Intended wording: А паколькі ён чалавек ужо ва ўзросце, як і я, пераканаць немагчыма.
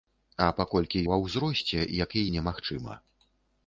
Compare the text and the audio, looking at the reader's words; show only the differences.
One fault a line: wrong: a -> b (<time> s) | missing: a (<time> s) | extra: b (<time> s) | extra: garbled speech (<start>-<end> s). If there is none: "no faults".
missing: ён чалавек ужо (1.0 s)
missing: я пераканаць (2.2 s)